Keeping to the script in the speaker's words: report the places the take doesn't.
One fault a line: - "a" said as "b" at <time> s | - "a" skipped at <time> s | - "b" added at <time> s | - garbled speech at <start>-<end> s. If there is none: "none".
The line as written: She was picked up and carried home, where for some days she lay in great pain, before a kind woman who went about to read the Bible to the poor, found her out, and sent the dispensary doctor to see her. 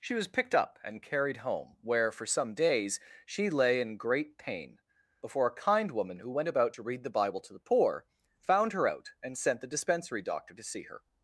none